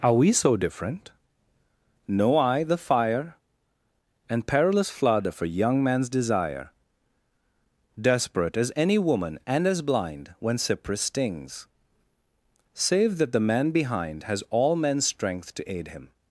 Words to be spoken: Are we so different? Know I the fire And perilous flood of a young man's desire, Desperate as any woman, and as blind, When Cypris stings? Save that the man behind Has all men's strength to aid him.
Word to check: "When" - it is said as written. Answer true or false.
true